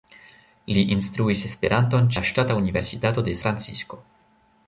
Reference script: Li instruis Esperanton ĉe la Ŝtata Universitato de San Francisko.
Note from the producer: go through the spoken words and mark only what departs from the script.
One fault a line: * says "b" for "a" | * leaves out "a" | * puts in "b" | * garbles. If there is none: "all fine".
* leaves out "ĉe"
* leaves out "San"